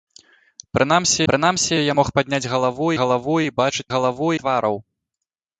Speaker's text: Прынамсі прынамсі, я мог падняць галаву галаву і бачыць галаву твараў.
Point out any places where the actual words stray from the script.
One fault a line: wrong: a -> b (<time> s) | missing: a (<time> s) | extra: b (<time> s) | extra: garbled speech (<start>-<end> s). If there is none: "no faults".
no faults